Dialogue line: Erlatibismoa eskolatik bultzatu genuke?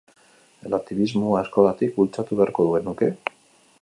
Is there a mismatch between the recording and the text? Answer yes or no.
yes